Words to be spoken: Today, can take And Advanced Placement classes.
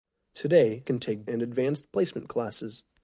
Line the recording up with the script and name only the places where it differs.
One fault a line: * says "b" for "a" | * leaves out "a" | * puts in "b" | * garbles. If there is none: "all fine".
all fine